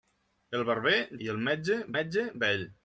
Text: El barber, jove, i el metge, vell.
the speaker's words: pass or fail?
fail